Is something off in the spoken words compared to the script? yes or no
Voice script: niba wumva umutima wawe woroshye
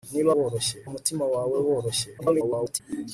yes